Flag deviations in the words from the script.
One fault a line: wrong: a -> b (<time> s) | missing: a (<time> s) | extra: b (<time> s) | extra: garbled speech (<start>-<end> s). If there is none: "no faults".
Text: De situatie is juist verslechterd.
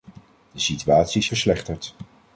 missing: juist (1.3 s)